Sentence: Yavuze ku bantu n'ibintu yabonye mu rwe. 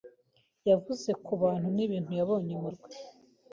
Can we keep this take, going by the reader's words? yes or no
yes